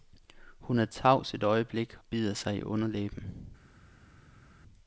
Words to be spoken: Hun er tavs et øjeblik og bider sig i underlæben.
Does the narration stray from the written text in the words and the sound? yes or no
yes